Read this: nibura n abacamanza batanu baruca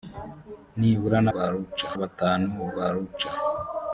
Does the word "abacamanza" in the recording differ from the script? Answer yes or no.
yes